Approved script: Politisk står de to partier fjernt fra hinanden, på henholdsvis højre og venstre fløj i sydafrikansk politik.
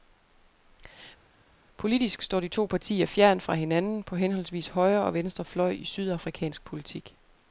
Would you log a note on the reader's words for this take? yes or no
no